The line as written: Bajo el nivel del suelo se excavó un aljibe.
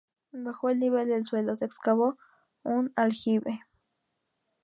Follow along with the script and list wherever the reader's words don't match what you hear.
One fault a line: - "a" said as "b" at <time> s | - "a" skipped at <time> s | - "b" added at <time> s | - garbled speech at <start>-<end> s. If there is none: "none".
none